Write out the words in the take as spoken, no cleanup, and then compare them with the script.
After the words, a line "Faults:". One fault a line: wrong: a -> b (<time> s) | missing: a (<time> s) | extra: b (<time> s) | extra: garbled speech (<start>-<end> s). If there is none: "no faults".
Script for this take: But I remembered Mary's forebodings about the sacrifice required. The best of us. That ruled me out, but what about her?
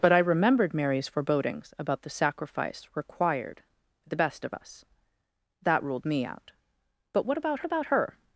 But I remembered Mary's forebodings about the sacrifice required. The best of us. That ruled me out, but what about about her?
Faults:
extra: about (7.6 s)